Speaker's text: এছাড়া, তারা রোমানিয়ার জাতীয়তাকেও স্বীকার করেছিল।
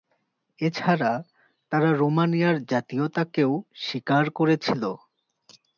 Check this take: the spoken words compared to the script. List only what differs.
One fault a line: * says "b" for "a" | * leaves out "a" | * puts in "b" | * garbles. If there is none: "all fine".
all fine